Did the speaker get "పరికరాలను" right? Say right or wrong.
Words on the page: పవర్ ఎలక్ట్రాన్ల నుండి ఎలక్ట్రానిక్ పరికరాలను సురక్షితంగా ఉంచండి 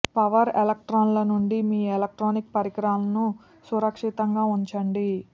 right